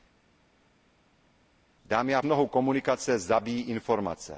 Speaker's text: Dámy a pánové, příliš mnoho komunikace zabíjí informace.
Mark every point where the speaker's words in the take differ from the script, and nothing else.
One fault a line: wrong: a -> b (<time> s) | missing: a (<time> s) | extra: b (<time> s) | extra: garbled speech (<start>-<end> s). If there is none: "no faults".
missing: pánové příliš (2.2 s)